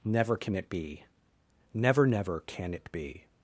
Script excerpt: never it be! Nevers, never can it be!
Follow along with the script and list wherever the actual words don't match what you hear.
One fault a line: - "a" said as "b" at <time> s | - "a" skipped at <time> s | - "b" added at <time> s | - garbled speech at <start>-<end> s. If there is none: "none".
- "can" added at 0.4 s
- "Nevers" said as "Never" at 1.7 s